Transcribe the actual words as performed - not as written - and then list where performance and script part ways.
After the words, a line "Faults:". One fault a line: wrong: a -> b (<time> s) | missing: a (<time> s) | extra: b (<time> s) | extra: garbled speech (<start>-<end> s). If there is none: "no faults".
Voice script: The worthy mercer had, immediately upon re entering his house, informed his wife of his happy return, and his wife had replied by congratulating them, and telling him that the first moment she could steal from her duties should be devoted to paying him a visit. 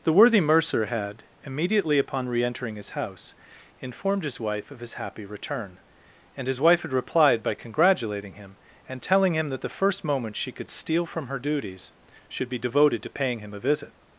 The worthy mercer had, immediately upon re entering his house, informed his wife of his happy return, and his wife had replied by congratulating him, and telling him that the first moment she could steal from her duties should be devoted to paying him a visit.
Faults:
wrong: them -> him (8.3 s)